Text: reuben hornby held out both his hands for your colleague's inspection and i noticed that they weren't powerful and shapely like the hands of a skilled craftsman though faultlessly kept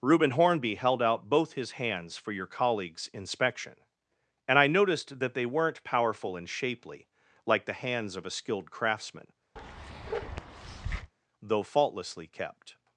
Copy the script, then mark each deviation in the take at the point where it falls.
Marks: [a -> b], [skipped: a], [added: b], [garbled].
reuben hornby held out both his hands for your colleague's inspection and i noticed that they weren't powerful and shapely like the hands of a skilled craftsman though faultlessly kept